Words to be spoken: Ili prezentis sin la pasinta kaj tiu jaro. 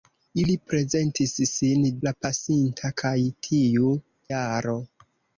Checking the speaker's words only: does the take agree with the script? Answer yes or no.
yes